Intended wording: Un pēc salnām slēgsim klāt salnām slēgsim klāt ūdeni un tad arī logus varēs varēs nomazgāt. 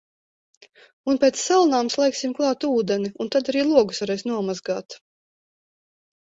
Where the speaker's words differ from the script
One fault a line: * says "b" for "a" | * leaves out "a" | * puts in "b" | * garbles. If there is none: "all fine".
* leaves out "salnām slēgsim klāt"
* leaves out "varēs"